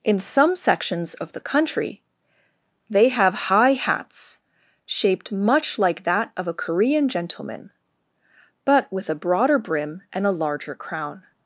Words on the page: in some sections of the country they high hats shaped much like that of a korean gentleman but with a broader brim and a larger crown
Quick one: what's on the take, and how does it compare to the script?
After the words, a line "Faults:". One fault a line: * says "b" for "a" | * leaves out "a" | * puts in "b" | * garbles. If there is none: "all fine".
in some sections of the country they have high hats shaped much like that of a korean gentleman but with a broader brim and a larger crown
Faults:
* puts in "have"